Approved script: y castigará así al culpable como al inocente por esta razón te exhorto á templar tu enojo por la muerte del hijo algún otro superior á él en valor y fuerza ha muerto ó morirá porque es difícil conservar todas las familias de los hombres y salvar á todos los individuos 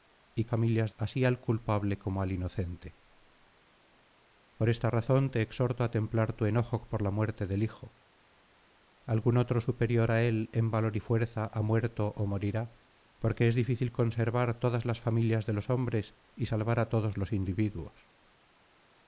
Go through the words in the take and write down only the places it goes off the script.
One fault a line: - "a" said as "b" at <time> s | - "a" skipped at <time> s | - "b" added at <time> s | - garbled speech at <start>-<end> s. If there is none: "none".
- "castigará" said as "familias" at 0.5 s